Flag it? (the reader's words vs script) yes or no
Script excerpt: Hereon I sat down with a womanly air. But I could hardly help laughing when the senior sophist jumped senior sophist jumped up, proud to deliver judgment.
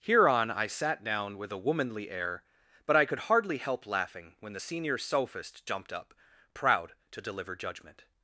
yes